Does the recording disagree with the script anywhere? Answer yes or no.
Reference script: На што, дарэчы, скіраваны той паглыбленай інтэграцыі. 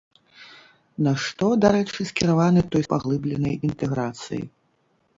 no